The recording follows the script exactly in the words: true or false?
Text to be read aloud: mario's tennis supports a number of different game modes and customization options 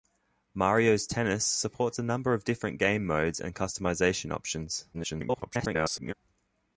false